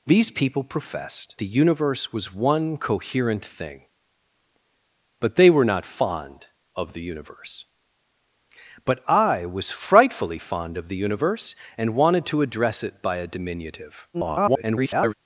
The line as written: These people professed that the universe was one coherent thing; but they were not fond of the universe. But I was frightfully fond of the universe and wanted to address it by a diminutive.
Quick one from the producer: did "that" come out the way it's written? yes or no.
no